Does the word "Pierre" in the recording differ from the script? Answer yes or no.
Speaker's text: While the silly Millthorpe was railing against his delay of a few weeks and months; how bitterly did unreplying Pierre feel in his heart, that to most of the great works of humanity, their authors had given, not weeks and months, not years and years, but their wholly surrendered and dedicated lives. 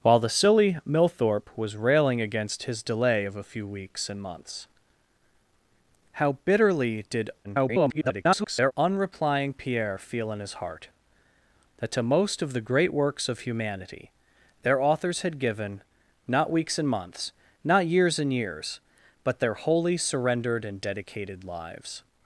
no